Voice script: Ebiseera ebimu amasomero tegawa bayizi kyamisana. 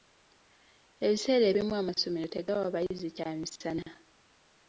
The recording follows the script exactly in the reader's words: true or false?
true